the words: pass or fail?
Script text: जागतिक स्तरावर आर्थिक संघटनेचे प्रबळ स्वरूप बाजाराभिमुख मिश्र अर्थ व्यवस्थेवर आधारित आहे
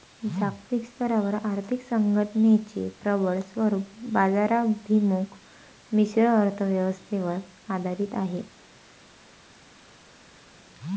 pass